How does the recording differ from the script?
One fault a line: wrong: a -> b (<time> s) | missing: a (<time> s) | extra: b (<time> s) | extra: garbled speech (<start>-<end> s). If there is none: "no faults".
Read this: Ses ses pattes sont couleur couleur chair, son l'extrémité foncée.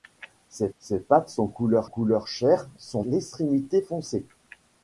no faults